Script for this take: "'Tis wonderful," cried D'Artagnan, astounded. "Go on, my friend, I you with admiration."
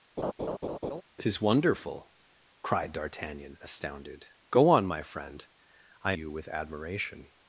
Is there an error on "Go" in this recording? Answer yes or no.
no